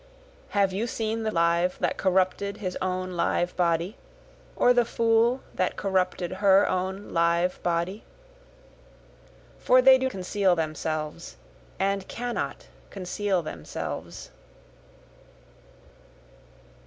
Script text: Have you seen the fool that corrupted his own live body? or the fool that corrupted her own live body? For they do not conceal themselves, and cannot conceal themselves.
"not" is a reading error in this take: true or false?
true